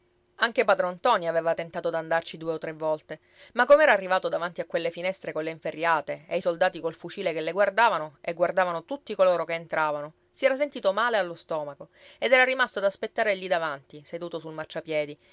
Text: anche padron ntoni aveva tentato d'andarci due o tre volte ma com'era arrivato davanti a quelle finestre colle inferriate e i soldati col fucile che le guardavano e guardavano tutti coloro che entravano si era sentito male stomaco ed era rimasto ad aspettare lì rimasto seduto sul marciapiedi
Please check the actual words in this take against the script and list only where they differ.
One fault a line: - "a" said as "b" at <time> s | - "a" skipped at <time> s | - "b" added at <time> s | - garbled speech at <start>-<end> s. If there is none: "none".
- "allo" added at 11.2 s
- "rimasto" said as "davanti" at 13.5 s